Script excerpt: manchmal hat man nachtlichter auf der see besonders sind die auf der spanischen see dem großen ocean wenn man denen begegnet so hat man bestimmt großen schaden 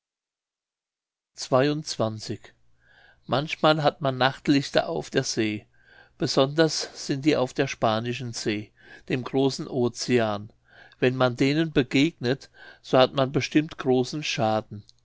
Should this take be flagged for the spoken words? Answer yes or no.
no